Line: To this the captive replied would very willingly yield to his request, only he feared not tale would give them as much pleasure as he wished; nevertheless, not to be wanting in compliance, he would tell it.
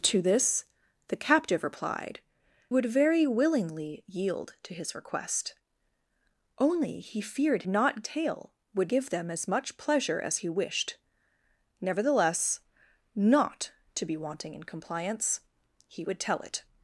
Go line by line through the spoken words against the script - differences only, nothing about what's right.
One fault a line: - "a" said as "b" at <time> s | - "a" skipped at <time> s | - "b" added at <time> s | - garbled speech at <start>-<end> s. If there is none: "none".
none